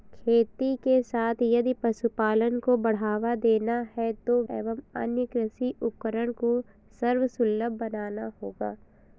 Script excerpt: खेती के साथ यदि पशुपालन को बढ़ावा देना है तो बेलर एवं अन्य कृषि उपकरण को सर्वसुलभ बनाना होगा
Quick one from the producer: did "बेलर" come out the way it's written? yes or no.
no